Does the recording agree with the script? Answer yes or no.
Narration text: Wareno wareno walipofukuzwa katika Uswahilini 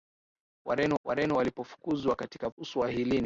yes